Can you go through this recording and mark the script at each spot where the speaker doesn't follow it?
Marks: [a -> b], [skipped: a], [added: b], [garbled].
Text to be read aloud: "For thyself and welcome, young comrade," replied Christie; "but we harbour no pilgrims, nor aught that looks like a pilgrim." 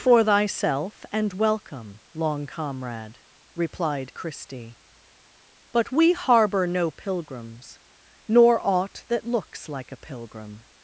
"For thyself and welcome, [young -> long] comrade," replied Christie; "but we harbour no pilgrims, nor aught that looks like a pilgrim."